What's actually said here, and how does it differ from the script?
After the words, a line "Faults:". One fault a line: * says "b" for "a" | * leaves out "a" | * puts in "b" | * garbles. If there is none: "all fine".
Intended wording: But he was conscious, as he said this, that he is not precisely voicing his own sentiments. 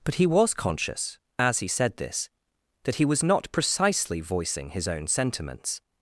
But he was conscious, as he said this, that he was not precisely voicing his own sentiments.
Faults:
* says "was" for "is"